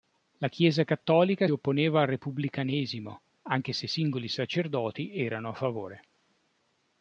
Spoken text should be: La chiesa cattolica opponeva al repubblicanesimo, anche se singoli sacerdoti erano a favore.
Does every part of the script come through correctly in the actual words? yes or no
yes